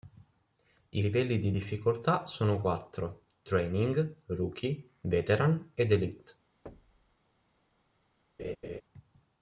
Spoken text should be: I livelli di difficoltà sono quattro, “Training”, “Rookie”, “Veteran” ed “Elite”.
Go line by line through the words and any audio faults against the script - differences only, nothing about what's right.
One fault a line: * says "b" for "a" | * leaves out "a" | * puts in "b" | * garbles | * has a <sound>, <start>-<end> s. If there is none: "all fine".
* has a thud, 6.7-7.2 s
* has a laugh, 8.4-8.8 s